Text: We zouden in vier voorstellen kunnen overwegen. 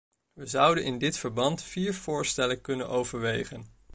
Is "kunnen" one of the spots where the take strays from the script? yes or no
no